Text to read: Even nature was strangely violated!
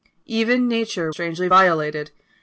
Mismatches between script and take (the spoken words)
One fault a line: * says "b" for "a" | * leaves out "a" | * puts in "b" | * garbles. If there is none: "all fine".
* leaves out "was"